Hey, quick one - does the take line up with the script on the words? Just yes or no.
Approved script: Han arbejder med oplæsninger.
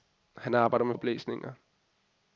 yes